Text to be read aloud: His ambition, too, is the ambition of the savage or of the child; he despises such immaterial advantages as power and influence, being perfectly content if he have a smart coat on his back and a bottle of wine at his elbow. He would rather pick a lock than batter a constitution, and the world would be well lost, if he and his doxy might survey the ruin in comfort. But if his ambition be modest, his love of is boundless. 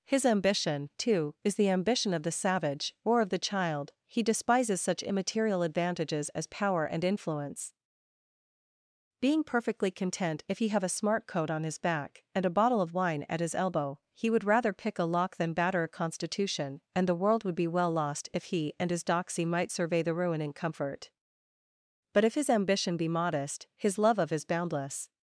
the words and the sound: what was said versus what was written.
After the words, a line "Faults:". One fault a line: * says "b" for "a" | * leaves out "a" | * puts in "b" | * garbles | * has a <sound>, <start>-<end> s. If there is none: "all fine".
His ambition, too, is the ambition of the savage or of the child; he despises such immaterial advantages as power and influence, being perfectly content if he have a smart coat on his back and a bottle of wine at his elbow. He would rather pick a lock than batter a constitution, and the world would be well lost, if he and his doxy might survey the ruin in comfort. But if his ambition be modest, his love of is boundless.
Faults:
all fine